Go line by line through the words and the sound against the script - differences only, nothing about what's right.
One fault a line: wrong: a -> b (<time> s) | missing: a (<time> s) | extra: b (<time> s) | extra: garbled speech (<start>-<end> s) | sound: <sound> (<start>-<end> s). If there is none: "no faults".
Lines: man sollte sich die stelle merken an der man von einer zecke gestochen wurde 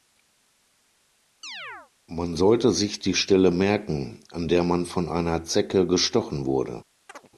sound: chirp (1.4-1.9 s)
sound: chirp (7.1-7.3 s)